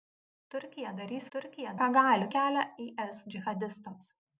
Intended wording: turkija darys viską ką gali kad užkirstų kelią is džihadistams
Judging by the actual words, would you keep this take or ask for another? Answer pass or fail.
fail